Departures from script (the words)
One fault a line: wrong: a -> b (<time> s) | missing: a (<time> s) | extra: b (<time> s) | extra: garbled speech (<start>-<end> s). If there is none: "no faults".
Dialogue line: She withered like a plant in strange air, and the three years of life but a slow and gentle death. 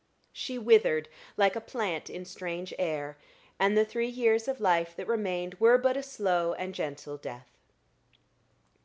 extra: that remained were (5.0 s)